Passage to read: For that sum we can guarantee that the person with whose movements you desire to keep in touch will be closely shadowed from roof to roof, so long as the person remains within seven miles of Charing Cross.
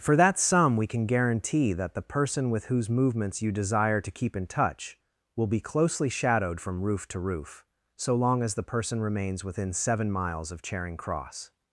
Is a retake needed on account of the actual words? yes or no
no